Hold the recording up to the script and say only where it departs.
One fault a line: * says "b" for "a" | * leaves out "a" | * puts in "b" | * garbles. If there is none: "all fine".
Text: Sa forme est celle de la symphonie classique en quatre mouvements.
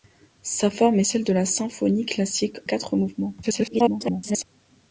* leaves out "en"
* garbles